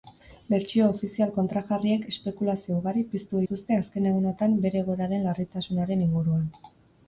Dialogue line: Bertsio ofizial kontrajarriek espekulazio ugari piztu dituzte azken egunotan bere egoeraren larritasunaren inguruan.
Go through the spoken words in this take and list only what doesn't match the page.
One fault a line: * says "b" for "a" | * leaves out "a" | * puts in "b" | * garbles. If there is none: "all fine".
all fine